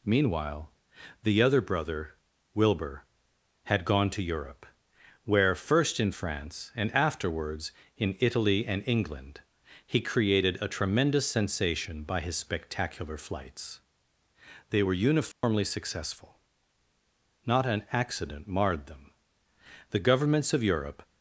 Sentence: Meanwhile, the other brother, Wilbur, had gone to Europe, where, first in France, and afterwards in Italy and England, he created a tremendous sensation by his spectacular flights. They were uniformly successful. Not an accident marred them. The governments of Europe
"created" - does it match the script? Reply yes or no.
yes